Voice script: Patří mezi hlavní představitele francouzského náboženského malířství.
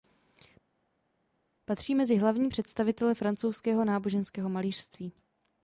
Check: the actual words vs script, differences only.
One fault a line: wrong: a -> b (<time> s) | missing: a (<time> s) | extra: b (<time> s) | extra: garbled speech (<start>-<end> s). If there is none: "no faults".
no faults